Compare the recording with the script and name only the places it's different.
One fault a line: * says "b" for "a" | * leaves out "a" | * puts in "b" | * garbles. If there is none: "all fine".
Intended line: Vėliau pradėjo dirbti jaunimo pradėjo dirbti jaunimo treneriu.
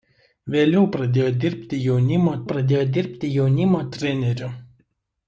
all fine